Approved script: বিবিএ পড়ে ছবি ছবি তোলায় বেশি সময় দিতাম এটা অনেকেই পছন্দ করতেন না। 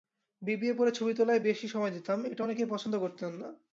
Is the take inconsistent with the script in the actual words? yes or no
yes